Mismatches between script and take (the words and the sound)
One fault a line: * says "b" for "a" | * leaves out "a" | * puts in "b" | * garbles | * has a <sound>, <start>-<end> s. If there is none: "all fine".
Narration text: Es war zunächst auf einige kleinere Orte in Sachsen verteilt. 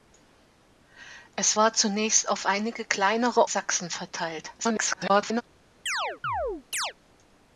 * leaves out "Orte in"
* garbles
* has a chirp, 5.9-6.9 s